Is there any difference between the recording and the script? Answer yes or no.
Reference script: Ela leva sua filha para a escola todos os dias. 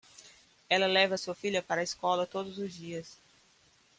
no